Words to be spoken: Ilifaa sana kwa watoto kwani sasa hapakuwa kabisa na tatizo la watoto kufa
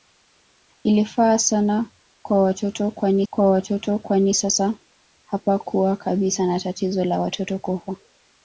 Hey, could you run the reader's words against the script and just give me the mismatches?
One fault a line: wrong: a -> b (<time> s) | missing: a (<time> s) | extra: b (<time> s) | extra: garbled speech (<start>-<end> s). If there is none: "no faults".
extra: kwa watoto kwani (3.3 s)